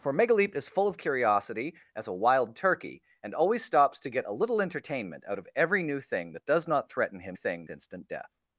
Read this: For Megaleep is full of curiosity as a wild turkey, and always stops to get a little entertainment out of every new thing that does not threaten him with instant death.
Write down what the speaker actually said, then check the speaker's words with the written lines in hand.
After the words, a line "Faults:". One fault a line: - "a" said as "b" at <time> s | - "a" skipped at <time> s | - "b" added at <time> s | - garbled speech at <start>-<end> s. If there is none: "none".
For Megaleep is full of curiosity as a wild turkey, and always stops to get a little entertainment out of every new thing that does not threaten him thing instant death.
Faults:
- "with" said as "thing" at 7.3 s